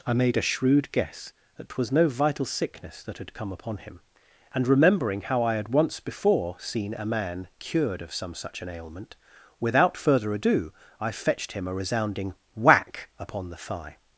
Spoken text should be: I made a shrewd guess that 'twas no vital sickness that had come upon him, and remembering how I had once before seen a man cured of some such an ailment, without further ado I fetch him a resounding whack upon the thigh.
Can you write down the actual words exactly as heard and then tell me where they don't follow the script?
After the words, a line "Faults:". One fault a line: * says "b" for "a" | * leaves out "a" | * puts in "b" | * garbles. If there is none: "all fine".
I made a shrewd guess that 'twas no vital sickness that had come upon him, and remembering how I had once before seen a man cured of some such an ailment, without further ado I fetched him a resounding whack upon the thigh.
Faults:
* says "fetched" for "fetch"